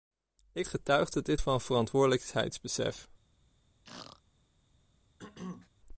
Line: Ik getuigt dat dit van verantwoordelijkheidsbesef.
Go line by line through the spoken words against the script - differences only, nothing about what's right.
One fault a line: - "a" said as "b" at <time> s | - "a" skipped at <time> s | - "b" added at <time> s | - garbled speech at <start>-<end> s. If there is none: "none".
none